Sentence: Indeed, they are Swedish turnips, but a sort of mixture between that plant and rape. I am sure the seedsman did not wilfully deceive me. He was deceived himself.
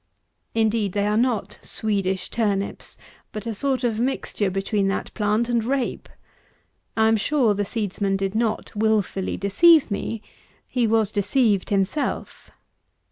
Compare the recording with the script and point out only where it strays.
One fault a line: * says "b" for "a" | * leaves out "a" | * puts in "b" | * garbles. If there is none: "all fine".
* puts in "not"